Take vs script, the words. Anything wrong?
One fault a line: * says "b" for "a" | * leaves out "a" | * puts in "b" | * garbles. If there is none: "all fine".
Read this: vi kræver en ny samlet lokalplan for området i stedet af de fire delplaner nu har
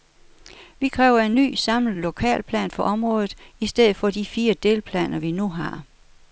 * says "for" for "af"
* puts in "vi"